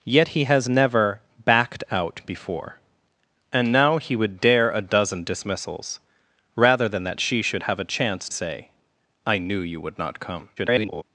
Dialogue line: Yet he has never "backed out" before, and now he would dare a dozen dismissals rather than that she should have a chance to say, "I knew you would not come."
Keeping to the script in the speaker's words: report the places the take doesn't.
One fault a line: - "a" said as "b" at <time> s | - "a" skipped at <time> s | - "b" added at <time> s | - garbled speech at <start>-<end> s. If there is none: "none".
- "to" skipped at 8.3 s
- garbled speech at 10.6-11.0 s